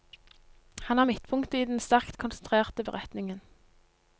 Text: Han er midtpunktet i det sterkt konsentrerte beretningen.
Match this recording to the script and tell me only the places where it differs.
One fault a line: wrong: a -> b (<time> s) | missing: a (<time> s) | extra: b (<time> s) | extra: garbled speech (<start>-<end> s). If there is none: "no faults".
wrong: det -> den (1.7 s)